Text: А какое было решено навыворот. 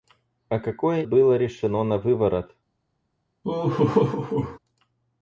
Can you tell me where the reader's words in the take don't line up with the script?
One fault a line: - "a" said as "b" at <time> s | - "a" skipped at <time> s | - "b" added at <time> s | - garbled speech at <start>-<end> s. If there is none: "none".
none